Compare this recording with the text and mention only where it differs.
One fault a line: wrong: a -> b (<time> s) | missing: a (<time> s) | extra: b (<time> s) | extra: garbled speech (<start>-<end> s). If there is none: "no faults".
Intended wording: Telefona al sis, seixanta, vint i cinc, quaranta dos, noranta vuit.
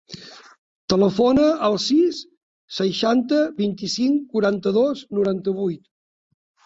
no faults